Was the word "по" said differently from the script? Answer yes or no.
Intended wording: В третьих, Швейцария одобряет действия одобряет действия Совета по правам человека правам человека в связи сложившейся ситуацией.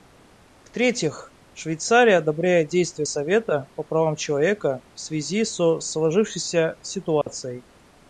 no